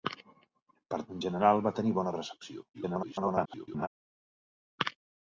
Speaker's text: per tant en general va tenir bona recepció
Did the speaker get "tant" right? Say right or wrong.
wrong